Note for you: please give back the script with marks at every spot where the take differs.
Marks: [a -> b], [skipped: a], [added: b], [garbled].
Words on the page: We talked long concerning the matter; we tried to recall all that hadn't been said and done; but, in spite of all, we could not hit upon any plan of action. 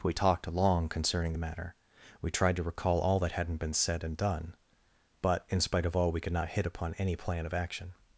We talked long concerning the matter; we tried to recall all that hadn't been said and done; but, in spite of all, we could not hit upon any plan of action.